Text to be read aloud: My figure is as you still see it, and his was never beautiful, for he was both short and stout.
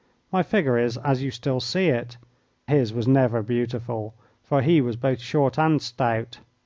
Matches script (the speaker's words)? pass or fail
fail